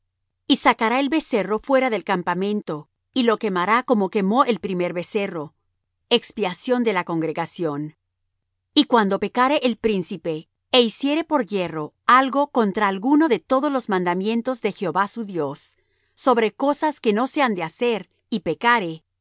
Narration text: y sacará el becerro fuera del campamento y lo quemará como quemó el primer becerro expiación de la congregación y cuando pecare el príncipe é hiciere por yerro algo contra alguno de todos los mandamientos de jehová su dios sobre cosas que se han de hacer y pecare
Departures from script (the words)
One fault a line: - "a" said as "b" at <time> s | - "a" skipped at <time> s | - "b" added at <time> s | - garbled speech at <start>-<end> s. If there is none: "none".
- "no" added at 17.1 s